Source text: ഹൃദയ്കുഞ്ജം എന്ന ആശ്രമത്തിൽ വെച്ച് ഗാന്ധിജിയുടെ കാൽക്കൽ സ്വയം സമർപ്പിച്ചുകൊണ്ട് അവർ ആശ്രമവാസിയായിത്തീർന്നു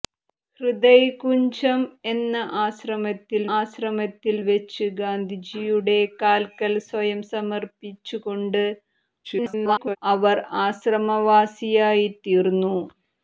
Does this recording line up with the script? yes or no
no